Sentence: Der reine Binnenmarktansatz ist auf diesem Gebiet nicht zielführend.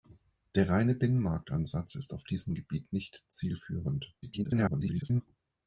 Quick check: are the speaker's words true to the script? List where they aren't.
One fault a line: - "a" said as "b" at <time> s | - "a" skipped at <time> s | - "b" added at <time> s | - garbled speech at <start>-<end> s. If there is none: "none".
- garbled speech at 4.2-5.2 s